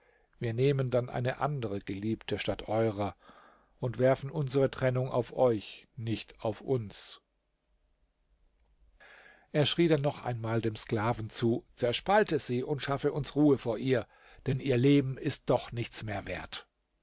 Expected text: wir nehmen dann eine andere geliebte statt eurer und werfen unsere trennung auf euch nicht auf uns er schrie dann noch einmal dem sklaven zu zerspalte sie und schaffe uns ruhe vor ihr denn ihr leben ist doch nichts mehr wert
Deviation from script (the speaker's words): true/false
false